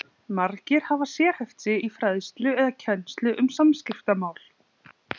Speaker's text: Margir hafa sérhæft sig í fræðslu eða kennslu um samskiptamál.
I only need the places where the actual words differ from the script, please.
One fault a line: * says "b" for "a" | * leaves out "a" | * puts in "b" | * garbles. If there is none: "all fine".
all fine